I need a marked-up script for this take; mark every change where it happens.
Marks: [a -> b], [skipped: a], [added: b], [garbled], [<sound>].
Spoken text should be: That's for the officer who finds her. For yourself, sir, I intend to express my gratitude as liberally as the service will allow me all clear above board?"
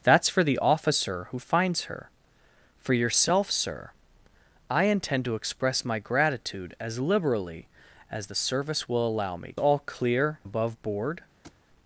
That's for the officer who finds her. For yourself, sir, I intend to express my gratitude as liberally as the service will allow me all clear above board?" [thud]